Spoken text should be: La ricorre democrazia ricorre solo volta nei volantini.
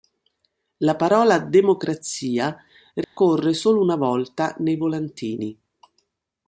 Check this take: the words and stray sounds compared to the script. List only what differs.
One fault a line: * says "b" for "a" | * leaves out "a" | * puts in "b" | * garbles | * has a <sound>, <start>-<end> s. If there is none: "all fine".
* says "parola" for "ricorre"
* has a dropout, 3.0-3.2 s
* puts in "una"